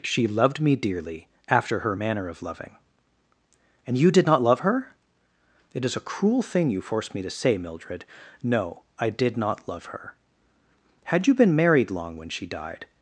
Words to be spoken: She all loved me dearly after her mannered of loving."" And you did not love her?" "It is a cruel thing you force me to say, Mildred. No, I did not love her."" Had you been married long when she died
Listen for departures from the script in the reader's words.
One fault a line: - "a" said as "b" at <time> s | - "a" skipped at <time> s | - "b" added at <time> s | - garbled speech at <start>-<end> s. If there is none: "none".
- "all" skipped at 0.3 s
- "mannered" said as "manner" at 1.9 s